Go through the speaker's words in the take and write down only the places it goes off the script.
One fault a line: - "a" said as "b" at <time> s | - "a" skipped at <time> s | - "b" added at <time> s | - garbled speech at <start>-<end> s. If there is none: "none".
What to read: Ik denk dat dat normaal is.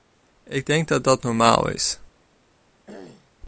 none